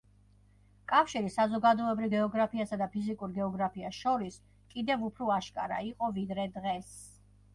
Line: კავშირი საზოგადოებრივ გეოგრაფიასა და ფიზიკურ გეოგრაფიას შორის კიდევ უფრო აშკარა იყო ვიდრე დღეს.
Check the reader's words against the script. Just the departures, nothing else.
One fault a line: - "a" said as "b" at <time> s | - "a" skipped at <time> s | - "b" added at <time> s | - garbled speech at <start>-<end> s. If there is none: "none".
none